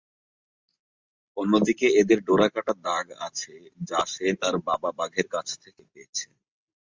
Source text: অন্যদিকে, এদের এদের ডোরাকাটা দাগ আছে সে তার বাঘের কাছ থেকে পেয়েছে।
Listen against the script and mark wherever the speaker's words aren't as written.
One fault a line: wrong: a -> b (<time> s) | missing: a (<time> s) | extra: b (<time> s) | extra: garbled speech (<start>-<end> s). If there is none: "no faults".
missing: এদের (2.2 s)
extra: যা (3.9 s)
extra: বাবা (4.7 s)